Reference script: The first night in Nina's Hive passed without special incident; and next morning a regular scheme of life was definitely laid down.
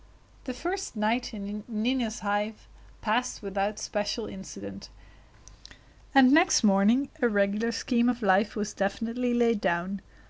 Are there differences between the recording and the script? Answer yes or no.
no